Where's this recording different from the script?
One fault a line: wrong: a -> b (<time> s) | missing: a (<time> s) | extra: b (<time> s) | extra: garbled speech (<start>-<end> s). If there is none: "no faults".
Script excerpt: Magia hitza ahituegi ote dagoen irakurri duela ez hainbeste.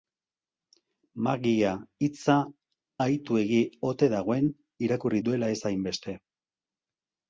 no faults